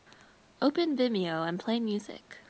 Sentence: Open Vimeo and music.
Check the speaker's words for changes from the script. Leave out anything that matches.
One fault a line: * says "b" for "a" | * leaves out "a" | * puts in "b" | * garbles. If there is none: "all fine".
* puts in "play"